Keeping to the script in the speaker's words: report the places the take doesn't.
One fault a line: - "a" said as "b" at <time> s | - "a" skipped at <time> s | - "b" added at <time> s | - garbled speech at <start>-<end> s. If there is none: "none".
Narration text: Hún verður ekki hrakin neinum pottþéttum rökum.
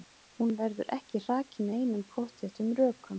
none